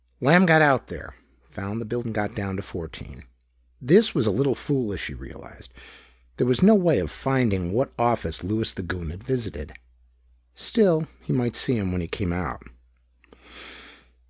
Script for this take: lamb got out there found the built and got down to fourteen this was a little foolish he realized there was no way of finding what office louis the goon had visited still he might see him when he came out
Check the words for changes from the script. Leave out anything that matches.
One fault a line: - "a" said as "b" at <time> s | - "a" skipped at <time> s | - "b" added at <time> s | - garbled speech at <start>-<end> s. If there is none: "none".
none